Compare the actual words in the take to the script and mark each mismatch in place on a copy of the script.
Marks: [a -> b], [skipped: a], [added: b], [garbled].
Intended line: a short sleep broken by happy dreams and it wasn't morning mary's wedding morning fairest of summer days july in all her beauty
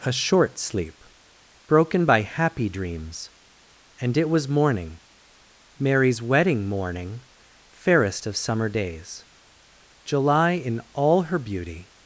a short sleep broken by happy dreams and it [wasn't -> was] morning mary's wedding morning fairest of summer days july in all her beauty